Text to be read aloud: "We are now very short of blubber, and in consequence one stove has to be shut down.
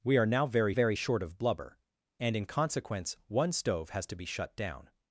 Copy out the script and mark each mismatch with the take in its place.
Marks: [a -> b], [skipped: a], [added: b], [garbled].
"We are now very [added: very] short of blubber, and in consequence one stove has to be shut down.